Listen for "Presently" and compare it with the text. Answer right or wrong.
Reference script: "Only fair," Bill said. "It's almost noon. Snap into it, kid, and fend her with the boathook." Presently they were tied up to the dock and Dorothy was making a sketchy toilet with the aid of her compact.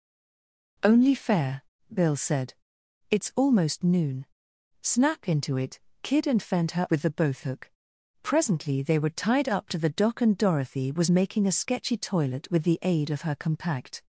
right